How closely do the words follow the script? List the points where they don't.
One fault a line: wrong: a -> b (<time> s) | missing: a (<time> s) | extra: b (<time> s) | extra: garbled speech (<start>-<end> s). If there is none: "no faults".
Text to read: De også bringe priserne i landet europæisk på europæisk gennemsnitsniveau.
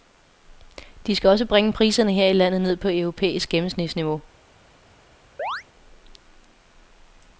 extra: skal (1.1 s)
extra: her (2.1 s)
wrong: europæisk -> ned (2.6 s)